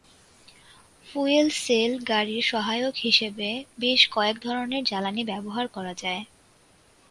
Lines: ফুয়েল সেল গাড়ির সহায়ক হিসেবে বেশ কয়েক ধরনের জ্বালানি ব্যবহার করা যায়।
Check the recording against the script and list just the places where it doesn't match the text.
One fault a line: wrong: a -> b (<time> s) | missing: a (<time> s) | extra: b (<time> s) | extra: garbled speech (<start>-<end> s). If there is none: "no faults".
no faults